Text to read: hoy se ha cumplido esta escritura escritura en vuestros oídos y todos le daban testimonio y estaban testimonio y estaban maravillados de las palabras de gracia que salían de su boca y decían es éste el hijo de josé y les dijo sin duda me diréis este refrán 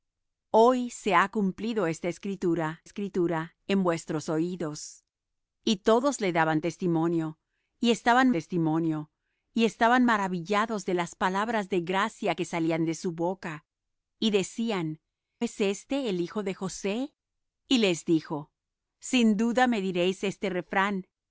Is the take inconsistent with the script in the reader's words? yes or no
no